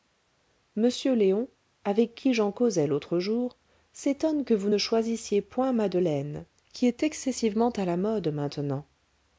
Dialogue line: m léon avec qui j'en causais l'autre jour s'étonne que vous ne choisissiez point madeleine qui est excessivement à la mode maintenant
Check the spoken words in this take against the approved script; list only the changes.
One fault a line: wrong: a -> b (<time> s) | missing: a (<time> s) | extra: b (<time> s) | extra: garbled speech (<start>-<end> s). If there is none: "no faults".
no faults